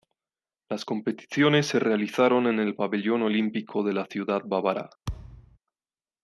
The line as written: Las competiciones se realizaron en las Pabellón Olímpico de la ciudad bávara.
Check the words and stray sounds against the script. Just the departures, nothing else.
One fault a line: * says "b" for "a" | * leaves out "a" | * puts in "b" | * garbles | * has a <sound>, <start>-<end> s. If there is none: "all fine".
* says "el" for "las"
* has a thud, 5.1-5.6 s